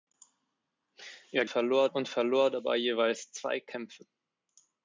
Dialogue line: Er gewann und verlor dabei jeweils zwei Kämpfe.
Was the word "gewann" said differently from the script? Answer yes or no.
yes